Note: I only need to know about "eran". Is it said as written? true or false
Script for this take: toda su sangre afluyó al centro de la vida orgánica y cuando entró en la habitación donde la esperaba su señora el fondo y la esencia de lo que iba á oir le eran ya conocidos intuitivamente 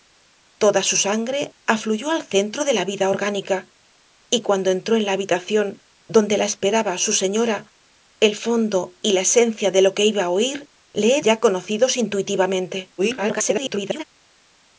false